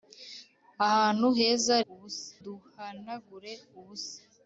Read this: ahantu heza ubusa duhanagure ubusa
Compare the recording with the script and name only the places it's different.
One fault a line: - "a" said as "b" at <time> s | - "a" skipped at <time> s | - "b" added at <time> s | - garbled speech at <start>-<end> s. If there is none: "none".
none